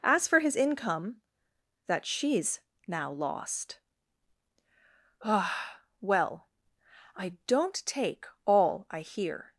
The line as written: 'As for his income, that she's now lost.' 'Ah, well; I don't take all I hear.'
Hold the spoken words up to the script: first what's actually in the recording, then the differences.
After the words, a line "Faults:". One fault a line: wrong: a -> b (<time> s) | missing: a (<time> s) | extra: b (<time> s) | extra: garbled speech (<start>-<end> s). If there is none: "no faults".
'As for his income, that she's now lost.' 'Ah, well; I don't take all I hear.'
Faults:
no faults